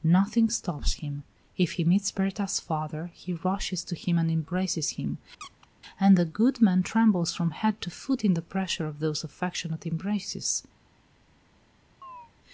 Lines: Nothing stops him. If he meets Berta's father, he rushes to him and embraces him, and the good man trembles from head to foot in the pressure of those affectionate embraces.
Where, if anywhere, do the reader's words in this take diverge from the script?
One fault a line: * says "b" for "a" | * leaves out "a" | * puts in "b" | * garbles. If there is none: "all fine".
all fine